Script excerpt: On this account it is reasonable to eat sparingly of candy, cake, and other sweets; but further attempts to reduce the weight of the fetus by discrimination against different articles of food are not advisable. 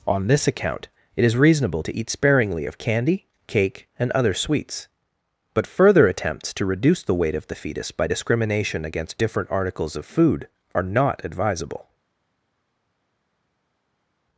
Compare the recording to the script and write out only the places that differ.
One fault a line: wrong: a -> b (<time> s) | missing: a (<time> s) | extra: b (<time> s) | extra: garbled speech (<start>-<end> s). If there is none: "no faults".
no faults